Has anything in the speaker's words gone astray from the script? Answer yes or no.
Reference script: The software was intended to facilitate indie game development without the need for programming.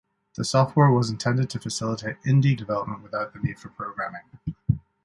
yes